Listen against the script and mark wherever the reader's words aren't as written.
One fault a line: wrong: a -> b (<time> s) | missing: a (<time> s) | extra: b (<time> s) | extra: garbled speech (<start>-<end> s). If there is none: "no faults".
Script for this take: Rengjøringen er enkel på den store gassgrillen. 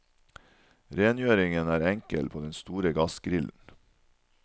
no faults